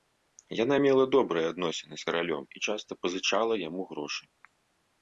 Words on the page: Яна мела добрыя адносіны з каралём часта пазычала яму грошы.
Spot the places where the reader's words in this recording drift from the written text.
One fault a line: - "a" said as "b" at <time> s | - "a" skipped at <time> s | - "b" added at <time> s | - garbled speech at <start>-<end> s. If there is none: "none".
- "і" added at 2.5 s